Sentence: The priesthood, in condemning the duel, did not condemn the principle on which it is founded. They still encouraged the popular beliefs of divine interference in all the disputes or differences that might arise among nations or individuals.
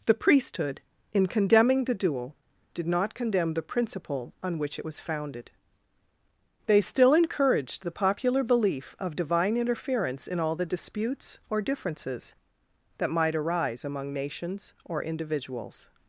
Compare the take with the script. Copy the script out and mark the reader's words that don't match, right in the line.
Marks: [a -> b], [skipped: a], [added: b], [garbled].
The priesthood, in condemning the duel, did not condemn the principle on which it [is -> was] founded. They still encouraged the popular [beliefs -> belief] of divine interference in all the disputes or differences that might arise among nations or individuals.